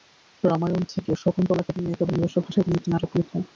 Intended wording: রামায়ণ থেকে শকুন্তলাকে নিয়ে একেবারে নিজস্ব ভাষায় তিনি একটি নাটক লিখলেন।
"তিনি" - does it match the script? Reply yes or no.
yes